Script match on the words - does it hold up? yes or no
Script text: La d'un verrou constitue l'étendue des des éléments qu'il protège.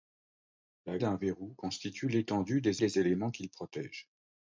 yes